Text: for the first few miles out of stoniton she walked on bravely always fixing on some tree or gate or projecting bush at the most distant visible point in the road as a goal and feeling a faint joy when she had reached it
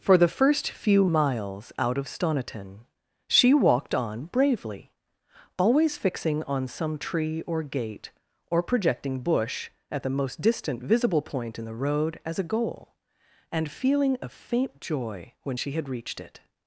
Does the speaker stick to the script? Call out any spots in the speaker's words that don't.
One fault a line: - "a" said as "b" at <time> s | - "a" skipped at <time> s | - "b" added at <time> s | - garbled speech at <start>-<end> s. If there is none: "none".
none